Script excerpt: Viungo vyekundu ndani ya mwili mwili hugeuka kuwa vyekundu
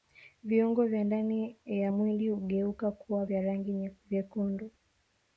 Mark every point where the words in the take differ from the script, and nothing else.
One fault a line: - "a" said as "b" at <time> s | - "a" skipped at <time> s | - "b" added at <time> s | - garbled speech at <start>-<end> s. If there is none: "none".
- "vyekundu" said as "vya" at 0.8 s
- "mwili" skipped at 2.3 s
- "vya rangi" added at 3.2 s